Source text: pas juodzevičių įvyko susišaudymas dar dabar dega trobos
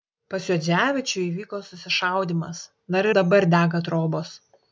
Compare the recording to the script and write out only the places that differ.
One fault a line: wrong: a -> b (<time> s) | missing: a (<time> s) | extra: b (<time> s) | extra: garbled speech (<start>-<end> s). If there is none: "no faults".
no faults